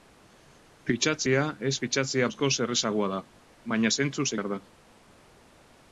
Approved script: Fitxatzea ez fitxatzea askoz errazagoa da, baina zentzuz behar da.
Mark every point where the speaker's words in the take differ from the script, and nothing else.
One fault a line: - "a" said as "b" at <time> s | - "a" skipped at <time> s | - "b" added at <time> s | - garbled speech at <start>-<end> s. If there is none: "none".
none